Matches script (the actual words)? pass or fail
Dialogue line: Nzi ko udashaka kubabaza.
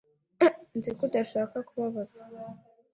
pass